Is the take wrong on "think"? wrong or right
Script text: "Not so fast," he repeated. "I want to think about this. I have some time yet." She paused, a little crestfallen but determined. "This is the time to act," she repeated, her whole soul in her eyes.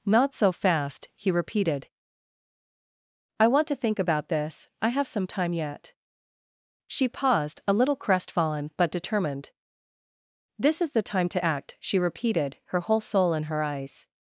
right